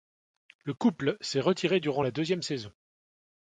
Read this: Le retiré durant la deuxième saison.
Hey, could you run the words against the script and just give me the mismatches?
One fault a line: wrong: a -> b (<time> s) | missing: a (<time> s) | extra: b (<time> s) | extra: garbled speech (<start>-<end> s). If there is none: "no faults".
extra: couple s'est (0.7 s)